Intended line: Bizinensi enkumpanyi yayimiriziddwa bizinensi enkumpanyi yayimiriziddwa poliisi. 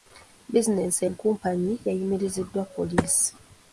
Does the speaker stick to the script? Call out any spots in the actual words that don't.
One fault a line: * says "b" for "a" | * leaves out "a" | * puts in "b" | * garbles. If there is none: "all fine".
* leaves out "bizinensi enkumpanyi yayimiriziddwa"